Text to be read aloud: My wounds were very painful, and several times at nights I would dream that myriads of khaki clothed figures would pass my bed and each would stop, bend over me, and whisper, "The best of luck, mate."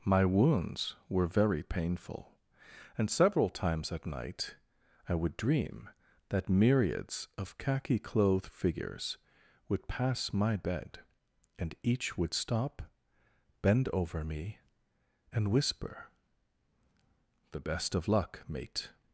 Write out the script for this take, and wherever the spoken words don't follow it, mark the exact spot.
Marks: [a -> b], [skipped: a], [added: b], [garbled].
My wounds were very painful, and several times at [nights -> night] I would dream that myriads of khaki clothed figures would pass my bed and each would stop, bend over me, and whisper, "The best of luck, mate."